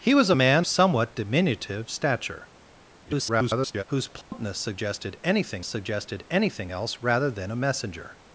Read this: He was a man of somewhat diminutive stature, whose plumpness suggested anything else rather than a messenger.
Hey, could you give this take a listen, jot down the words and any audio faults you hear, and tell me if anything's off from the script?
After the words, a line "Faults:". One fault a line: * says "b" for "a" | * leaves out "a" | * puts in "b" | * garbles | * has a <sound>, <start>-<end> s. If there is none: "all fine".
He was a man somewhat diminutive stature, [garbled] whose plumpness suggested anything suggested anything else rather than a messenger.
Faults:
* leaves out "of"
* garbles
* has a dropout, 4.2-4.3 s
* puts in "suggested anything"